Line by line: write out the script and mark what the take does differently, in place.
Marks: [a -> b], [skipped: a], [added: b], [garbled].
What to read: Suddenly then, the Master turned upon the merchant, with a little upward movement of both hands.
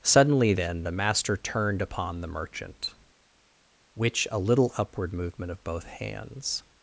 Suddenly then, the Master turned upon the merchant, [with -> which] a little upward movement of both hands.